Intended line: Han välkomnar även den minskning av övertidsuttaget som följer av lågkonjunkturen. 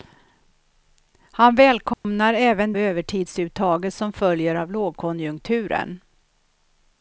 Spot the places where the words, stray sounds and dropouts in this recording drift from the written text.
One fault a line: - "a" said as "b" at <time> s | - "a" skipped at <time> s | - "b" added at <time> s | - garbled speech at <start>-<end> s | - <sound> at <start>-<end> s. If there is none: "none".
- dropout at 1.9-2.0 s
- "den minskning av" skipped at 2.7 s